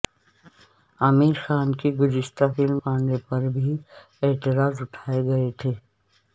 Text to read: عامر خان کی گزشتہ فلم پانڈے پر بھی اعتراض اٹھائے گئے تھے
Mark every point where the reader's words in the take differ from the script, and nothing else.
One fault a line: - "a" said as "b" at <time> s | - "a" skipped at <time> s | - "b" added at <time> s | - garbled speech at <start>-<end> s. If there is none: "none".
none